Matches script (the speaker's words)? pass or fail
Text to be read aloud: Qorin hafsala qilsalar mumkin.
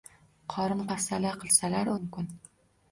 pass